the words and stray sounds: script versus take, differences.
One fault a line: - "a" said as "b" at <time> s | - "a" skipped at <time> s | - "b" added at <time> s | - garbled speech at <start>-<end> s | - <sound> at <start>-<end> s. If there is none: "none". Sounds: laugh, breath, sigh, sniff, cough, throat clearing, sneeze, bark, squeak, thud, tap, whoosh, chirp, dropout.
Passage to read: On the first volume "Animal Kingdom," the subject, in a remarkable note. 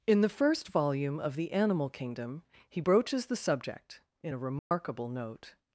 - "On" said as "In" at 0.1 s
- "of the" added at 1.2 s
- "he broaches" added at 2.7 s
- dropout at 4.6-4.7 s